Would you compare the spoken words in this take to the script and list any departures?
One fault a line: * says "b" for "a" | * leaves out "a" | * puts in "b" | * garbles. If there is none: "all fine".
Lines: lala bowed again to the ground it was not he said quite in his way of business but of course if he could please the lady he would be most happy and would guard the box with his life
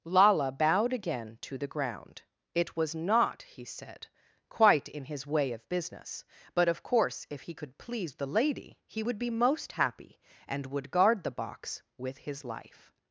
all fine